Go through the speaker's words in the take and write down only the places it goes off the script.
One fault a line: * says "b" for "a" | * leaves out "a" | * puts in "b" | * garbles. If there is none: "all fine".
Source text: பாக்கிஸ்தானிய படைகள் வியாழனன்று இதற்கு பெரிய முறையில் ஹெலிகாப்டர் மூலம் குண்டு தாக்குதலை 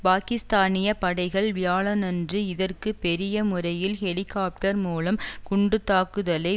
all fine